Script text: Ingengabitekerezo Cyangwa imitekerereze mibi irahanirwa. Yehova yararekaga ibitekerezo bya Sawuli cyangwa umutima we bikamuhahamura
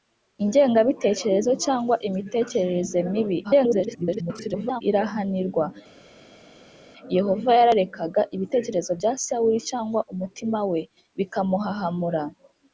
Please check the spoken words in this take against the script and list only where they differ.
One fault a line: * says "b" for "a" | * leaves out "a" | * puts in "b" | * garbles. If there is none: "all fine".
* garbles